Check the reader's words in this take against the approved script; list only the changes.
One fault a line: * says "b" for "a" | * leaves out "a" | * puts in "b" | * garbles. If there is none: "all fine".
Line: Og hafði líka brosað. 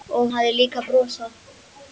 all fine